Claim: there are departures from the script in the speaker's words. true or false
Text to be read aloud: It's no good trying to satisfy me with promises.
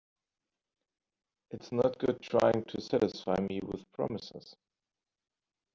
false